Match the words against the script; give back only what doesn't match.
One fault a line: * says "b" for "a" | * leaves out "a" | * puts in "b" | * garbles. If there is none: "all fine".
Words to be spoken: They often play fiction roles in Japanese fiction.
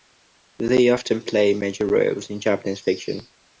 * says "major" for "fiction"